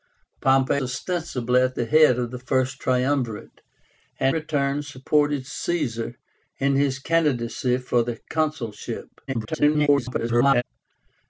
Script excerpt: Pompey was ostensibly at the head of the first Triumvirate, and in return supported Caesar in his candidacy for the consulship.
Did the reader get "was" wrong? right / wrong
wrong